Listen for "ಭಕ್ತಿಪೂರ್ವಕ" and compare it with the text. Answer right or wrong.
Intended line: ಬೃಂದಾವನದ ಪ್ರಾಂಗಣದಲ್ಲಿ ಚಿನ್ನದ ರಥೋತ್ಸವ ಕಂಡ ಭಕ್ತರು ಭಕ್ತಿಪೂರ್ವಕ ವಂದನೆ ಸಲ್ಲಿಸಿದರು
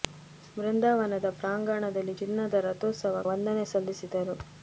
wrong